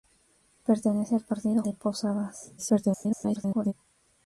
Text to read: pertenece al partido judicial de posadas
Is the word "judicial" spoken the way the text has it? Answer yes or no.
no